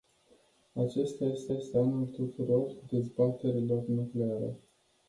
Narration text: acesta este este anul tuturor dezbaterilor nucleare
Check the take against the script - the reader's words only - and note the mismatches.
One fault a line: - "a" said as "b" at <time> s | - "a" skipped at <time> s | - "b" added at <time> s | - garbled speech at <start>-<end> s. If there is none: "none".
none